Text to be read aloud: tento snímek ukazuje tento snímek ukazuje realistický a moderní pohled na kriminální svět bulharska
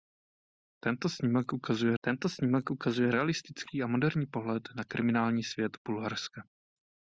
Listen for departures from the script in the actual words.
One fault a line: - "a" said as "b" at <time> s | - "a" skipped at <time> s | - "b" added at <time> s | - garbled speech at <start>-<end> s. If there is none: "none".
none